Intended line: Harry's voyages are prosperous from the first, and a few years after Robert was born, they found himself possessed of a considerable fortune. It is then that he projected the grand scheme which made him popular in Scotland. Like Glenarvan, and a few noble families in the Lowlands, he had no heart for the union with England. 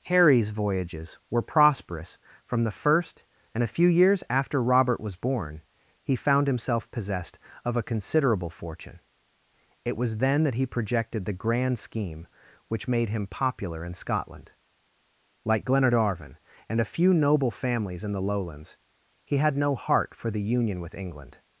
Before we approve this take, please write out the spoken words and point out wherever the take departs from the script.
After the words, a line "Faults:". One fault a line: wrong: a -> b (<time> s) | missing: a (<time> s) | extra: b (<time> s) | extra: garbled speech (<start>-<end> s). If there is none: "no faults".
Harry's voyages were prosperous from the first, and a few years after Robert was born, he found himself possessed of a considerable fortune. It was then that he projected the grand scheme which made him popular in Scotland. Like Glenarvan, and a few noble families in the Lowlands, he had no heart for the union with England.
Faults:
wrong: are -> were (1.3 s)
wrong: they -> he (6.0 s)
wrong: is -> was (10.0 s)